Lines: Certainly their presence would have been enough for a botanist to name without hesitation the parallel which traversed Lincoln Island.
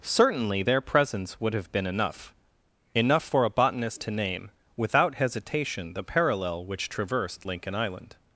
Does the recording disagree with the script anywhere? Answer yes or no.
yes